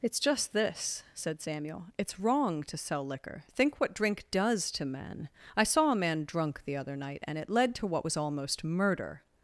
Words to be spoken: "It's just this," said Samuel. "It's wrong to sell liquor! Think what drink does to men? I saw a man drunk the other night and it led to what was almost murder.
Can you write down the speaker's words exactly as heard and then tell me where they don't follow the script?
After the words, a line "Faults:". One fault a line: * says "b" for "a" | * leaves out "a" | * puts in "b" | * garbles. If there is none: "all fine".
"It's just this," said Samuel. "It's wrong to sell liquor! Think what drink does to men? I saw a man drunk the other night and it led to what was almost murder.
Faults:
all fine